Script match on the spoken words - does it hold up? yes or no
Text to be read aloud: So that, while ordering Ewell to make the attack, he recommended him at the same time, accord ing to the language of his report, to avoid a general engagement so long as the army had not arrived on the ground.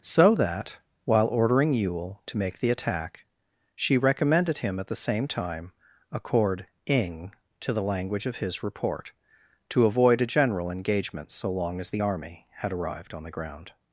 no